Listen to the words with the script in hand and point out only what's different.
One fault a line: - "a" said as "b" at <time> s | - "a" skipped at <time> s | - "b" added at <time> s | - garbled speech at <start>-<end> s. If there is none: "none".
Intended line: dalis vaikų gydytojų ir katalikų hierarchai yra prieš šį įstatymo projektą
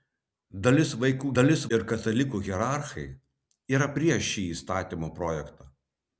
- "gydytojų" said as "dalis" at 1.4 s